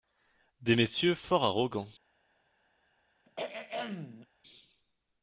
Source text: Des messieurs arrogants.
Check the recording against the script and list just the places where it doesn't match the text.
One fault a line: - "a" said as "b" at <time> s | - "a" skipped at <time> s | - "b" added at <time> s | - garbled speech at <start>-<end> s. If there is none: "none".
- "fort" added at 1.1 s